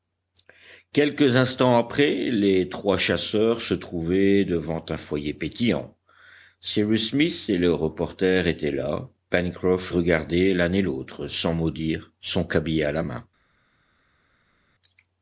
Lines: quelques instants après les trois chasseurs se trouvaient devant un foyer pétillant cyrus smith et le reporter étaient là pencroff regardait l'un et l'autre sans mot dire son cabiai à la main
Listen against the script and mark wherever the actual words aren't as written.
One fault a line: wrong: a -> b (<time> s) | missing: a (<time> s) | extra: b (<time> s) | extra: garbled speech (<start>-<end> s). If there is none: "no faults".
no faults